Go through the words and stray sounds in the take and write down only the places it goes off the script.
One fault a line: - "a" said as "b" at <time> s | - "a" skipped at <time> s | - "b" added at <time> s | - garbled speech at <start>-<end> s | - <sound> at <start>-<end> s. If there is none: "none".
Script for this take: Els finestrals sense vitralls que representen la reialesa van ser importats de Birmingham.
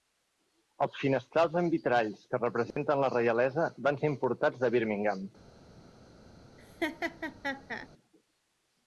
- "sense" said as "amb" at 1.6 s
- dropout at 2.7-2.8 s
- laugh at 6.6-7.9 s